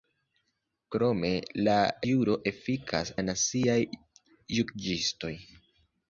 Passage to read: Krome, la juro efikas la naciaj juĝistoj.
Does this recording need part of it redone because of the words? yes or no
no